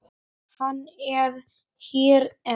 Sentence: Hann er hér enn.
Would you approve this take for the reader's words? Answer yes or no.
yes